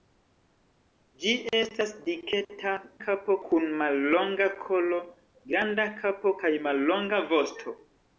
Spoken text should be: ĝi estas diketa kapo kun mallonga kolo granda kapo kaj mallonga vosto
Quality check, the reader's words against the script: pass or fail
pass